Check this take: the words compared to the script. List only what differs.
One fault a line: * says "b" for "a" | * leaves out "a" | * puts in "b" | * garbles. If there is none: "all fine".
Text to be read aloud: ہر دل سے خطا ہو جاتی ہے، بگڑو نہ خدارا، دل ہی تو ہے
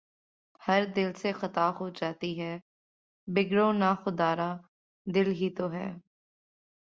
all fine